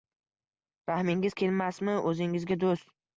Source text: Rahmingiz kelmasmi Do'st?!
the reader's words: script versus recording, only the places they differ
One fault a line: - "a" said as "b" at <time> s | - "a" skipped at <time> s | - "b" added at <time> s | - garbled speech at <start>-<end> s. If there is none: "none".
- "o'zingizga" added at 2.1 s